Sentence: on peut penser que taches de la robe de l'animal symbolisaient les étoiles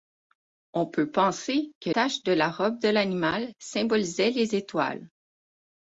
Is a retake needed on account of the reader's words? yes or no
no